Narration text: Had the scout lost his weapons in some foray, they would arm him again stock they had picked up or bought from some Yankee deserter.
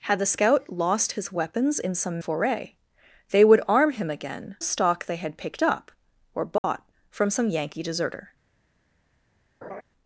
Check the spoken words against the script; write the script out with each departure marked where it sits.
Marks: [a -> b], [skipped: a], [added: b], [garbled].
Had the scout lost his weapons in some foray, they would arm him again stock they had picked up or bought from some Yankee deserter.